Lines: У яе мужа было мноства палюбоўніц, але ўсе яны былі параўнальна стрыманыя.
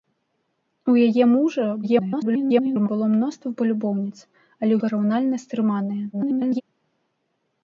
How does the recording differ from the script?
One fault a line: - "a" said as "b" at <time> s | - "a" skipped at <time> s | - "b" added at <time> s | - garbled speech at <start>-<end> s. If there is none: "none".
- garbled speech at 1.8-2.9 s
- "ўсе яны былі" skipped at 4.7 s
- garbled speech at 6.1-6.6 s